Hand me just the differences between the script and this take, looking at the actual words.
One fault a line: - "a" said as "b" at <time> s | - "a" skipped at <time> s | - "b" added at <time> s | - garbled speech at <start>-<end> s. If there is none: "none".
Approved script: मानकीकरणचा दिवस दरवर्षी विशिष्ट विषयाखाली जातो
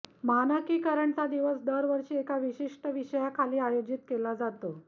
- "एका" added at 2.2 s
- "आयोजित केला" added at 3.6 s